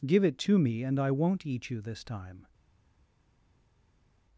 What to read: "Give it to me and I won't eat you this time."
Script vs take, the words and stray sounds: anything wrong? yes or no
no